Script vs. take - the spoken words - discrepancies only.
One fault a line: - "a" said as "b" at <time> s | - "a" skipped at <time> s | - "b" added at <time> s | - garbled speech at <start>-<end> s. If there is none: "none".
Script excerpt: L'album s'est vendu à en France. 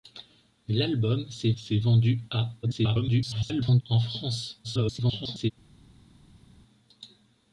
- "s'est" added at 1.5 s
- garbled speech at 2.6-3.8 s
- garbled speech at 4.6-5.5 s